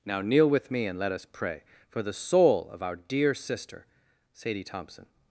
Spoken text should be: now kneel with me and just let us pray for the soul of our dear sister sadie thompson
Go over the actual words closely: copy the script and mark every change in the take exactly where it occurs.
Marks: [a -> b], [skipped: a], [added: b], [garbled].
now kneel with me and [skipped: just] let us pray for the soul of our dear sister sadie thompson